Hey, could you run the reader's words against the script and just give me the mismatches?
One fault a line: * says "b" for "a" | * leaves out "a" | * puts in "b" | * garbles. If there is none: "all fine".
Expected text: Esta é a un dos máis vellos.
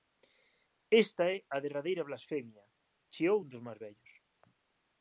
* puts in "derradeira blasfemia chiou"